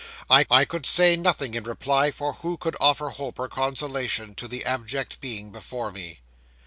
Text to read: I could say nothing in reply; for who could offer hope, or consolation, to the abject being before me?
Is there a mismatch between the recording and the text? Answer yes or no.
yes